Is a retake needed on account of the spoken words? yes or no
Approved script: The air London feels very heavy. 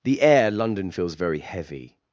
no